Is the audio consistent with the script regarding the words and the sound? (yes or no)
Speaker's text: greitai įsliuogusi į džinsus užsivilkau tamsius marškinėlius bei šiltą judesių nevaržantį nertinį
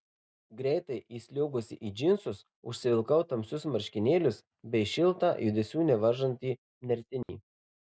no